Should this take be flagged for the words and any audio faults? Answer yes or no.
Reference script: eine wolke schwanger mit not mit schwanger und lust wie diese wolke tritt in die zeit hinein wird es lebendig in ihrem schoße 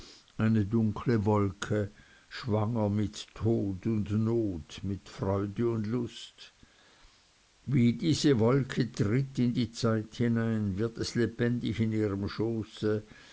yes